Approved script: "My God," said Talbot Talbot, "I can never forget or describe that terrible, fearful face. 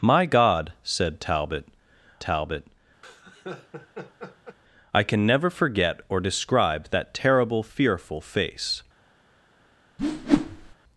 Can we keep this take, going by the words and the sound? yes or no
no